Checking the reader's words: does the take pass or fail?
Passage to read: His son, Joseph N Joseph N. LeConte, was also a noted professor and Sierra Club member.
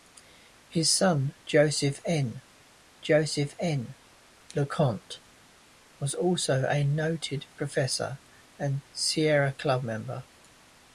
pass